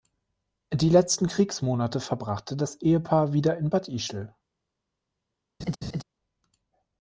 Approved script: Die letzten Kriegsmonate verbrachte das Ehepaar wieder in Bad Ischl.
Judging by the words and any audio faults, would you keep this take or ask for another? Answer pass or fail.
fail